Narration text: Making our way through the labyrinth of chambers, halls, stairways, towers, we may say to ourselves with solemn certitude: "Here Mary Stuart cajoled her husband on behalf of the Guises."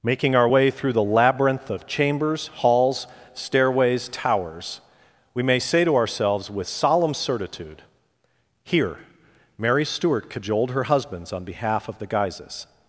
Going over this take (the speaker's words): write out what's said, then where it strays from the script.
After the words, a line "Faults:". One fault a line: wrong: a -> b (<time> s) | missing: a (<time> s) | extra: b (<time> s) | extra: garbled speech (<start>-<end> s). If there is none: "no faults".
Making our way through the labyrinth of chambers, halls, stairways, towers, we may say to ourselves with solemn certitude: "Here Mary Stuart cajoled her husbands on behalf of the Guises."
Faults:
wrong: husband -> husbands (10.9 s)